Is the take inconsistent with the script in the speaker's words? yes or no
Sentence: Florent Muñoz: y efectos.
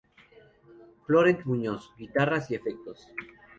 yes